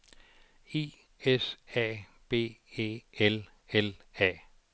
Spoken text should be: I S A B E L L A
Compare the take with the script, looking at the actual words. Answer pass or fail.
pass